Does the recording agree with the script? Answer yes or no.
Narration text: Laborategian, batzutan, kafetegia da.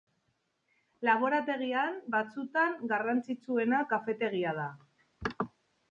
no